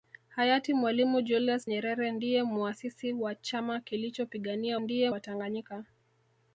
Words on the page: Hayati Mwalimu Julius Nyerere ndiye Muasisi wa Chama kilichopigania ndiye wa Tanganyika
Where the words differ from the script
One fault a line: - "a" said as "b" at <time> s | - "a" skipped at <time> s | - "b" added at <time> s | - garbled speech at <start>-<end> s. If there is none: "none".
none